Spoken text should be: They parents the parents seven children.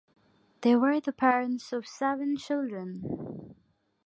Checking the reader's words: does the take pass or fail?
fail